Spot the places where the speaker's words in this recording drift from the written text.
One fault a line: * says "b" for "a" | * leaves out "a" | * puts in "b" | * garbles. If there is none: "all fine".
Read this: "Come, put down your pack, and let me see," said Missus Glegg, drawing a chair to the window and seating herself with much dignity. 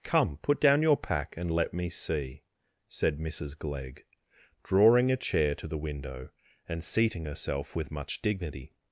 all fine